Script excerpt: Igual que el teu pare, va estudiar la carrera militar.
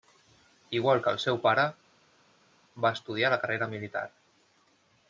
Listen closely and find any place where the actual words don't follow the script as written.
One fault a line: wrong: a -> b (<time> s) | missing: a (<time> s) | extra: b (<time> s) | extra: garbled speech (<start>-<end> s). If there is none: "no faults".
wrong: teu -> seu (1.2 s)